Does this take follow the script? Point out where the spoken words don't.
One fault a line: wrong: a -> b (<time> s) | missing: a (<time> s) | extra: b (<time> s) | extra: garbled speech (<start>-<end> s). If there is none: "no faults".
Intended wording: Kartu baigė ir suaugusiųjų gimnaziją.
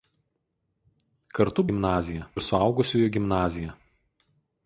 wrong: baigė -> gimnaziją (1.7 s)